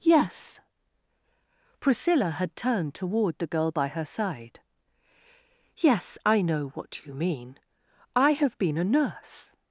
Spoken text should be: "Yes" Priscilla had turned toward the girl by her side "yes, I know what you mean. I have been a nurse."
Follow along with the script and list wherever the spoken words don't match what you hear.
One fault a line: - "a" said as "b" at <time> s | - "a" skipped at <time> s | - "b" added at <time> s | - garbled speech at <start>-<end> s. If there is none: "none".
none